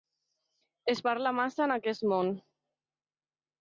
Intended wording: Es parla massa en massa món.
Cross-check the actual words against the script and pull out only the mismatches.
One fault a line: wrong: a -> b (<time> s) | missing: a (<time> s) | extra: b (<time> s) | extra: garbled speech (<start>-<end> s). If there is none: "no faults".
wrong: massa -> aquest (1.8 s)